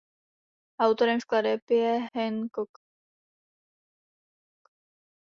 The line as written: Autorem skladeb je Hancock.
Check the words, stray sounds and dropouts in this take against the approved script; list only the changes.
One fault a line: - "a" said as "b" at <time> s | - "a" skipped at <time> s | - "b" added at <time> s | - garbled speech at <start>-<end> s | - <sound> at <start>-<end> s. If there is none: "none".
none